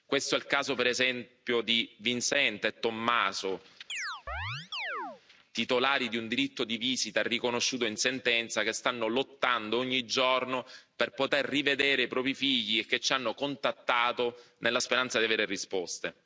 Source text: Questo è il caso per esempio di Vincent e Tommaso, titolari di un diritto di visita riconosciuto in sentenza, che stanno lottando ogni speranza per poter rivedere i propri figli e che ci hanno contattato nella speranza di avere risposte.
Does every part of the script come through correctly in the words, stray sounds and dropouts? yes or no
no